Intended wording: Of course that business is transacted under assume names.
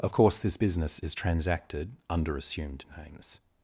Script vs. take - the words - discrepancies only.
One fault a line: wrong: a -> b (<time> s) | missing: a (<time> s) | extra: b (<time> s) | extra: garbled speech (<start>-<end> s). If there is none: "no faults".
wrong: that -> this (0.4 s)
wrong: assume -> assumed (2.3 s)